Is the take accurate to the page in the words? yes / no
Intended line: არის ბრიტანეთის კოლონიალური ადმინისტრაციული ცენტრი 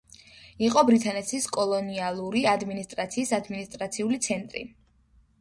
no